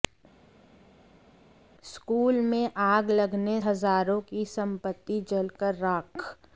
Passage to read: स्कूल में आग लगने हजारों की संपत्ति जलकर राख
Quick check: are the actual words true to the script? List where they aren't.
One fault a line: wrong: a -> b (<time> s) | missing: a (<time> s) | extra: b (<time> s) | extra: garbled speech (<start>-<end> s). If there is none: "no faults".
no faults